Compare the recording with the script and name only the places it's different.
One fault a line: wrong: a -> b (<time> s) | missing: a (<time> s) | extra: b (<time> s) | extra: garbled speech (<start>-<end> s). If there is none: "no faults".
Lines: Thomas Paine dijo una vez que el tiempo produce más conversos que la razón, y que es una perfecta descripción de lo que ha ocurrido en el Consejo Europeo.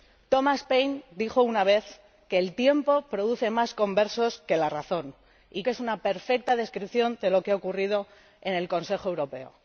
no faults